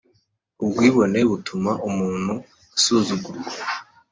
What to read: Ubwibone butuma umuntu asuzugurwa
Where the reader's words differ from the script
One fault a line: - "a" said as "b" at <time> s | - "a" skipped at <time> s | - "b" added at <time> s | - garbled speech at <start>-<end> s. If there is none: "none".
none